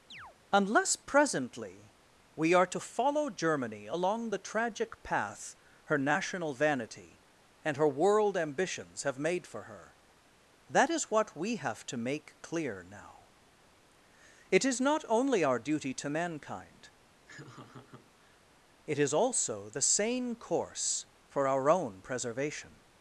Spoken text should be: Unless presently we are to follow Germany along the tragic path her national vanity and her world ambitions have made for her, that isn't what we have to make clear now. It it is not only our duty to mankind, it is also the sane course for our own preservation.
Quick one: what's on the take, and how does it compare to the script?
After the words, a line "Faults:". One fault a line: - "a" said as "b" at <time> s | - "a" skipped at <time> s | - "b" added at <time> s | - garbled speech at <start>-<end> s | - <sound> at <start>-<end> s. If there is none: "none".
Unless presently we are to follow Germany along the tragic path her national vanity and her world ambitions have made for her, that is what we have to make clear now. It is not only our duty to mankind, it is also the sane course for our own preservation.
Faults:
- chirp at 0.1-0.4 s
- "isn't" said as "is" at 10.9 s
- "it" skipped at 14.6 s
- laugh at 17.3-18.4 s